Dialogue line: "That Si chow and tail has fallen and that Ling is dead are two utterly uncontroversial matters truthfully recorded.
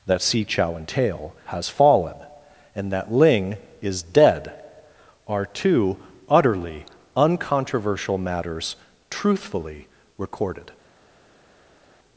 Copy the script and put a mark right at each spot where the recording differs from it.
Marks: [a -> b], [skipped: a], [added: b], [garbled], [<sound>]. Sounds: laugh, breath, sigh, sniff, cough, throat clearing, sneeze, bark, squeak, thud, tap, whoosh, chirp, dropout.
"That Si chow and tail has fallen and that Ling is dead are two utterly uncontroversial matters truthfully recorded.